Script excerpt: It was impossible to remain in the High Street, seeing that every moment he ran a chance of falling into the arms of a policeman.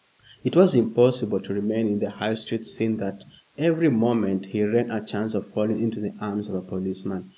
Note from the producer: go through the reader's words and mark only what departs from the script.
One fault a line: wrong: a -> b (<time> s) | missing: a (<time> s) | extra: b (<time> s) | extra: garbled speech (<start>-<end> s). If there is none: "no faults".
no faults